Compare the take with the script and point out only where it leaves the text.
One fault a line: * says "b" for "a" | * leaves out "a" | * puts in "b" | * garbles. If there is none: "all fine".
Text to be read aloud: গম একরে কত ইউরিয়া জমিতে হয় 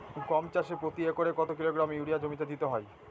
* puts in "চাষে প্রতি"
* puts in "কিলোগ্রাম"
* puts in "দিতে"